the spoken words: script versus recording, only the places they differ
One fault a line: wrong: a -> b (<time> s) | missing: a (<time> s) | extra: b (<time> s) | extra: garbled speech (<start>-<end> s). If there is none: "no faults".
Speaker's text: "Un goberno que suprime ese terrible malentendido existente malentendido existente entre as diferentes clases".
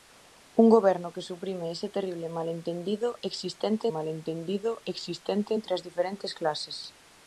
no faults